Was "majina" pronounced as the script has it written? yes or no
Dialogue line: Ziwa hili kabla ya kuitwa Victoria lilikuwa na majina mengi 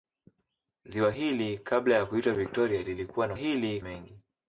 no